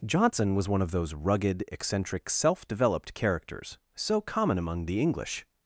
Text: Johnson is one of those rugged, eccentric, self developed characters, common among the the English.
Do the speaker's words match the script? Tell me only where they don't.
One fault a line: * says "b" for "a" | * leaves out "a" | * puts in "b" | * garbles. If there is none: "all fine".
* says "was" for "is"
* puts in "so"
* leaves out "the"